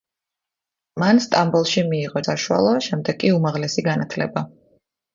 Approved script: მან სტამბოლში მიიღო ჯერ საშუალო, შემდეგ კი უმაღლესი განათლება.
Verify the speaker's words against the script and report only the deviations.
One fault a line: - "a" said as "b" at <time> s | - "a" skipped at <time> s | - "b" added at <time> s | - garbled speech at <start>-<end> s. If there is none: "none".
- "ჯერ" skipped at 2.2 s